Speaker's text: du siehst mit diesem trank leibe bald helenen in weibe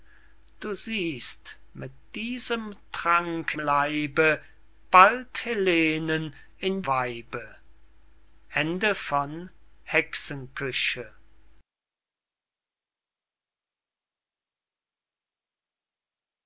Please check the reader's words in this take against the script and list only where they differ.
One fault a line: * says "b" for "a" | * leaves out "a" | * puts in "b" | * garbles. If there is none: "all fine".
all fine